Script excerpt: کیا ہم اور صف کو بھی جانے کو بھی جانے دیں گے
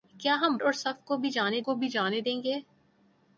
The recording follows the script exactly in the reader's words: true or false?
true